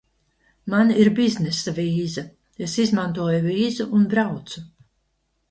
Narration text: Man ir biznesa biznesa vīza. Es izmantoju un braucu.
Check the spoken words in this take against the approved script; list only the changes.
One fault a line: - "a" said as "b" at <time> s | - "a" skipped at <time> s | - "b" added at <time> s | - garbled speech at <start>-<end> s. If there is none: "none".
- "biznesa" skipped at 1.7 s
- "vīzu" added at 3.5 s